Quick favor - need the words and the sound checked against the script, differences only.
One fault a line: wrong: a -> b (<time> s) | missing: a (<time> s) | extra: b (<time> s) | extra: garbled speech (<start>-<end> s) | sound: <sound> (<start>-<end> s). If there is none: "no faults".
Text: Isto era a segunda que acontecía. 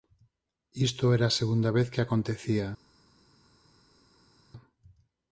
extra: vez (1.8 s)